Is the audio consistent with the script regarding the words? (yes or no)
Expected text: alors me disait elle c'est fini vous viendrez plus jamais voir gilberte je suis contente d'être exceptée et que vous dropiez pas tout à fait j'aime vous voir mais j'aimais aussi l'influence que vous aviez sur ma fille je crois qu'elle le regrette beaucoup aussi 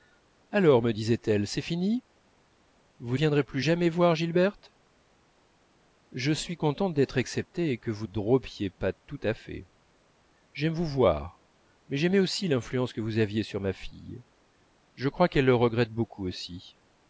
yes